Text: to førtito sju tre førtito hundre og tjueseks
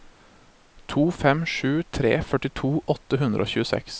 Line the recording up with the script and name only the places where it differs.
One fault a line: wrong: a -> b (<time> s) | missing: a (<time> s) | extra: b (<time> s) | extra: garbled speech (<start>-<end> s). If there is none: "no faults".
wrong: førtito -> fem (1.2 s)
extra: åtte (3.0 s)